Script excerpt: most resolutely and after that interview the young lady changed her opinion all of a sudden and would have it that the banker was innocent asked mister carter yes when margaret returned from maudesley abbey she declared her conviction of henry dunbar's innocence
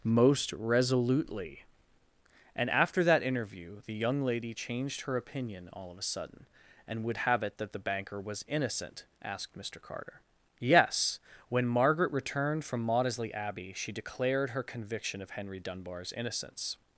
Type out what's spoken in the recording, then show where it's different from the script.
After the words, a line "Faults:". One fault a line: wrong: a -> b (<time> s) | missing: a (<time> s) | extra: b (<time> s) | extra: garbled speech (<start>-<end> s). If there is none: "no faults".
most resolutely and after that interview the young lady changed her opinion all of a sudden and would have it that the banker was innocent asked mister carter yes when margaret returned from maudesley abbey she declared her conviction of henry dunbar's innocence
Faults:
no faults